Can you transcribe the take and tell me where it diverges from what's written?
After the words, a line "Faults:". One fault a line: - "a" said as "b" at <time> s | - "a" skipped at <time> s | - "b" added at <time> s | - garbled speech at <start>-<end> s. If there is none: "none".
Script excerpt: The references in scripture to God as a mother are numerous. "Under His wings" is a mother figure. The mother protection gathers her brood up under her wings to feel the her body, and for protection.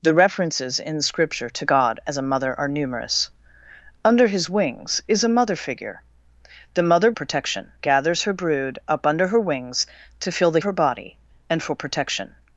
The references in scripture to God as a mother are numerous. "Under His wings" is a mother figure. The mother protection gathers her brood up under her wings to feel the her body, and for protection.
Faults:
none